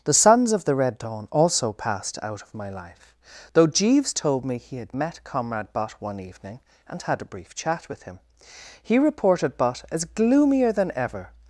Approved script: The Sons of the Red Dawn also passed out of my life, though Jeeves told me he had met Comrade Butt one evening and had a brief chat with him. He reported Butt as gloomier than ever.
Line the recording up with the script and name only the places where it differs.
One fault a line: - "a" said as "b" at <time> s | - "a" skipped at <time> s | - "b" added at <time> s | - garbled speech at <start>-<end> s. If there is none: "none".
none